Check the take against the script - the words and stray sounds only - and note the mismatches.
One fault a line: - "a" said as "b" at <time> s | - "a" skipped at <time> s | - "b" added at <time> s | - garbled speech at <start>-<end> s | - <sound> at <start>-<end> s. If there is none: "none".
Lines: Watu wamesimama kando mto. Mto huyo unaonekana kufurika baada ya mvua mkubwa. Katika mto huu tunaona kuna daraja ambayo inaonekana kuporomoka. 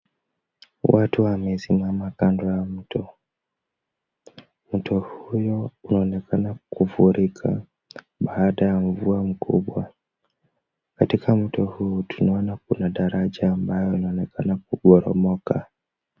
- "ya" added at 2.5 s